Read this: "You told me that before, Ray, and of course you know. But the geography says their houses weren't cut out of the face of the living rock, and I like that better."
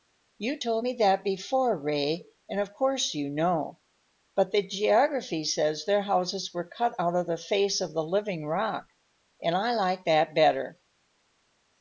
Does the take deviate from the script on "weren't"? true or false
true